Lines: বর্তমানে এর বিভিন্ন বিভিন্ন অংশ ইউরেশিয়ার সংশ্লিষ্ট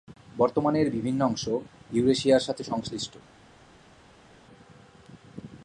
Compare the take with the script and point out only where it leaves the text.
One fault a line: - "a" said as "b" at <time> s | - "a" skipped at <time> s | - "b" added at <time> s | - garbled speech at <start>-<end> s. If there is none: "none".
- "বিভিন্ন" skipped at 1.2 s
- "সাথে" added at 2.5 s